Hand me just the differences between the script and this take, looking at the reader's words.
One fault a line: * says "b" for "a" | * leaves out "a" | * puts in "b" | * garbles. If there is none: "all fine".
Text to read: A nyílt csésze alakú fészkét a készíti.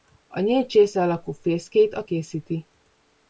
all fine